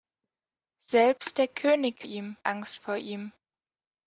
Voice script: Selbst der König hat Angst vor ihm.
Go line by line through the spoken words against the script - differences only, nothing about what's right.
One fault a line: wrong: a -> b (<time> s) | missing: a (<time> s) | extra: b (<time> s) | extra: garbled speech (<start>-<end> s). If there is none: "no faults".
wrong: hat -> ihm (2.0 s)